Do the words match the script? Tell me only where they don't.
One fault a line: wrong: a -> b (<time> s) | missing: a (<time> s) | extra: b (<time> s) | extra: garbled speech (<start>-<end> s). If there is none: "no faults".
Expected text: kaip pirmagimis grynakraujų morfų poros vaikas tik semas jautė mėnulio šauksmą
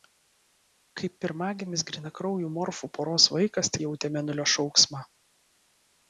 missing: tik semas (3.7 s)